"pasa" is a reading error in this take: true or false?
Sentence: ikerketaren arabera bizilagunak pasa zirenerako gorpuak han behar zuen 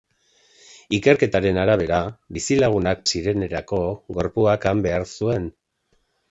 true